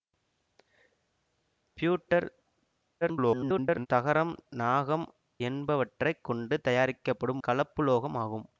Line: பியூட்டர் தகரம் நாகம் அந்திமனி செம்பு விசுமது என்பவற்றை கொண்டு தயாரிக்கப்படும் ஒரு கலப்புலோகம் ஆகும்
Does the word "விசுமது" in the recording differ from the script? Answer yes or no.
yes